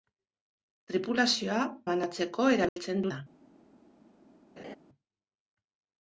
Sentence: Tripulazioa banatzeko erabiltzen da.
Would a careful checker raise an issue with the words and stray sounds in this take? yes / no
yes